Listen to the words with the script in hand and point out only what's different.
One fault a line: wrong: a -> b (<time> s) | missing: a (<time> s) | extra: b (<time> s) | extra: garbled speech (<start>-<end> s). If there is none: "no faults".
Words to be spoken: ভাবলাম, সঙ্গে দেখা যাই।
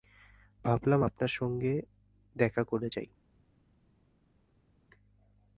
extra: আপনার (1.0 s)
extra: করে (2.6 s)